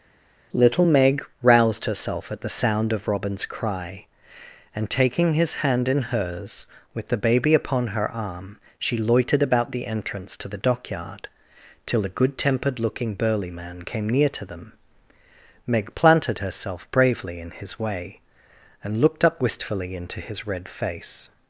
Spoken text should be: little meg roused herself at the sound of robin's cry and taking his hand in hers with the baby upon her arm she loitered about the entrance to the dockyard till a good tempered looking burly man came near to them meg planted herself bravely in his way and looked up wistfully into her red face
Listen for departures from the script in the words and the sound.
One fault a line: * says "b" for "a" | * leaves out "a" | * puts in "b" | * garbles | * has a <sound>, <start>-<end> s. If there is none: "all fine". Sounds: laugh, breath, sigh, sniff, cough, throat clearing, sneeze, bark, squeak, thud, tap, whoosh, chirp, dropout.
* says "his" for "her"